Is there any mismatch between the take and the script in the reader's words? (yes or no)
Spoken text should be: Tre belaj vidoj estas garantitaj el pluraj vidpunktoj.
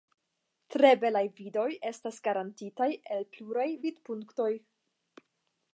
no